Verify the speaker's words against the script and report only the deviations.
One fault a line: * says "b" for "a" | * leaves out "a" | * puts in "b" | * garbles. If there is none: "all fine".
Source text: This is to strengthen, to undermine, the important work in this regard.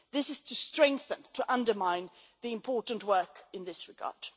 all fine